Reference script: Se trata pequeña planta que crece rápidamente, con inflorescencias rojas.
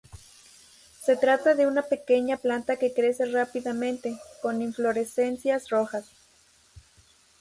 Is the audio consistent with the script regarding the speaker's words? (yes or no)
no